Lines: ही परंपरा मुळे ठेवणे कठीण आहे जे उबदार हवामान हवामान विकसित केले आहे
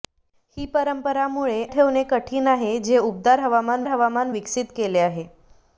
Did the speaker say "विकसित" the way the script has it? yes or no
yes